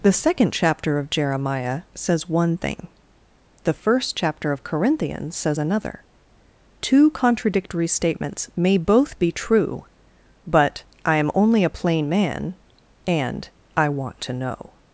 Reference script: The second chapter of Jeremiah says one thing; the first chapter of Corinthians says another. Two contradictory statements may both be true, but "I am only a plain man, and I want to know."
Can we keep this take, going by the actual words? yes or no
yes